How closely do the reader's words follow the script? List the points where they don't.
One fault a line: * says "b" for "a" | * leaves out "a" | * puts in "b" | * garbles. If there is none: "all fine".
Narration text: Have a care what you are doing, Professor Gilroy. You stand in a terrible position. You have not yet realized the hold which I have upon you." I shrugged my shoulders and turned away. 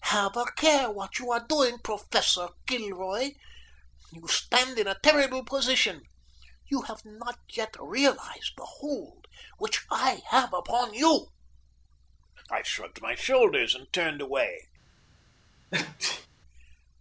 all fine